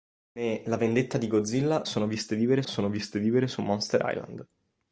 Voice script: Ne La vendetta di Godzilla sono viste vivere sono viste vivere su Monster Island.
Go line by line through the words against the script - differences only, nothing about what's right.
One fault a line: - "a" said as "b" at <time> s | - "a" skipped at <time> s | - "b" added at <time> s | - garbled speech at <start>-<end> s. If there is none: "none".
none